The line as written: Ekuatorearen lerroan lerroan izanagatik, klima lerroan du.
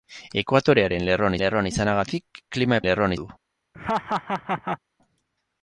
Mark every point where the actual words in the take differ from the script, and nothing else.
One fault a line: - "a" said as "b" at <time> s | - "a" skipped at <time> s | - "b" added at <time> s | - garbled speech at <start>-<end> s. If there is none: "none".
none